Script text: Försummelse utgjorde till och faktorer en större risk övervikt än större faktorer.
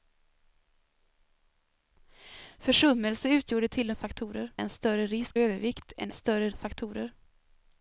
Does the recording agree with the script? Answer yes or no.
yes